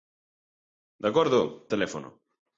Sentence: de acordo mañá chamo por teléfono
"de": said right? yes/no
yes